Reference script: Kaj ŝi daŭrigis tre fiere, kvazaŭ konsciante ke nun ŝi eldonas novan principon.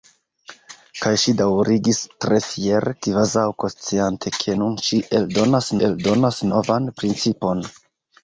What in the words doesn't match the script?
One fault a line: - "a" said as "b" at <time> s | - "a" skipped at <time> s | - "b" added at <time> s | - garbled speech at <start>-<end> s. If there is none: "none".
- "eldonas" added at 5.9 s